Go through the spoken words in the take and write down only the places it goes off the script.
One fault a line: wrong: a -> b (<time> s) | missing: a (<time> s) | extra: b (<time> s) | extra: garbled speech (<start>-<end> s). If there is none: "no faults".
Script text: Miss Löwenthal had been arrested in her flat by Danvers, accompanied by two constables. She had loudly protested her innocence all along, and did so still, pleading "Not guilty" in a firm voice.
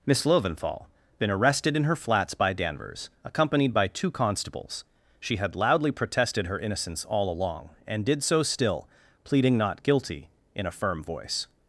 missing: had (0.8 s)
wrong: flat -> flats (1.9 s)